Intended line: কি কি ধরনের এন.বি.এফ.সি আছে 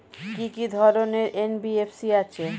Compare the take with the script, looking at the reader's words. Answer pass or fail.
pass